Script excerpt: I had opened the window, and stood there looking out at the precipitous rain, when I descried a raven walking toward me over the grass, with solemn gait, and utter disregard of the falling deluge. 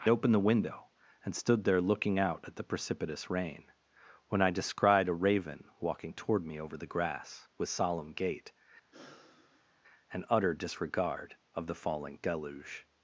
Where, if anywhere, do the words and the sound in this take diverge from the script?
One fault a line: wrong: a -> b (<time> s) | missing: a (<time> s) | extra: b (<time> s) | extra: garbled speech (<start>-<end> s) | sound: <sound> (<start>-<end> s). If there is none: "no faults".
missing: had (0.1 s)
sound: sigh (8.9-9.8 s)